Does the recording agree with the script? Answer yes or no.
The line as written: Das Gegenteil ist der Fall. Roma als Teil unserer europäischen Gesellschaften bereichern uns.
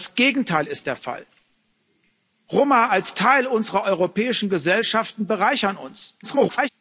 no